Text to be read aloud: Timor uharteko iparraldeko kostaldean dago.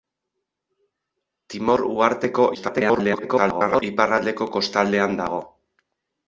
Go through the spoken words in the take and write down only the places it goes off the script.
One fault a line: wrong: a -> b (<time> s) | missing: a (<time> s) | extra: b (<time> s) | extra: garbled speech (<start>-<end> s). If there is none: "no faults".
extra: garbled speech (2.5-3.8 s)